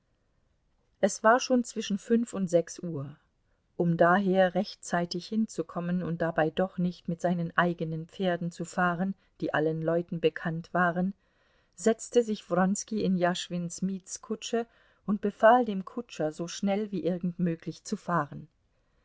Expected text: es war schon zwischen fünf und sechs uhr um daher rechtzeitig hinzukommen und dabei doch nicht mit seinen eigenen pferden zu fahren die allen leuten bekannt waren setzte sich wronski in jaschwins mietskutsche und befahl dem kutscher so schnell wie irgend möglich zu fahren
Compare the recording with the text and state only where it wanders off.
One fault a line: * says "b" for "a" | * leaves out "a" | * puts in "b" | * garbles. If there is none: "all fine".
all fine